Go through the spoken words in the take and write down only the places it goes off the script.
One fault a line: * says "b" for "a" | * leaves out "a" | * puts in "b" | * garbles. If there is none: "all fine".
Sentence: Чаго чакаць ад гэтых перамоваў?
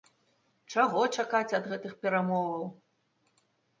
all fine